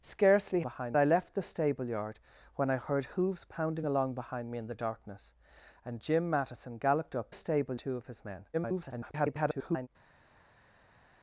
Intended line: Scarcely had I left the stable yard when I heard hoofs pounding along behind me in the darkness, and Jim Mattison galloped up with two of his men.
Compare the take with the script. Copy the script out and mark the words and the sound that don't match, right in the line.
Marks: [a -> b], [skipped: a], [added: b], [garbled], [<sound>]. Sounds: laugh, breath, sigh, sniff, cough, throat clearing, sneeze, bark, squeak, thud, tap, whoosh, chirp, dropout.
Scarcely [had -> behind] I left the stable yard when I heard hoofs pounding along behind me in the darkness, and Jim Mattison galloped up [with -> stable] two of his men. [garbled]